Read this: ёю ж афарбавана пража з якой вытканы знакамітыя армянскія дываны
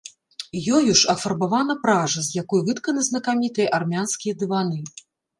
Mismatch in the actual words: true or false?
false